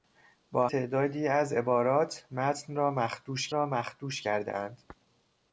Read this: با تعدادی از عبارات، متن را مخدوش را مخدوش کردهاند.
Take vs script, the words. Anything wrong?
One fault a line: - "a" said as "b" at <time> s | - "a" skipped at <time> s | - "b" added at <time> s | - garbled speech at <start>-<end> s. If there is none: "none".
none